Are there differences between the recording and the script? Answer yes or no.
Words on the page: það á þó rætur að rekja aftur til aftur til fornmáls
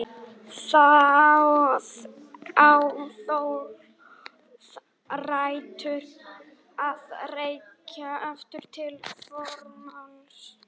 yes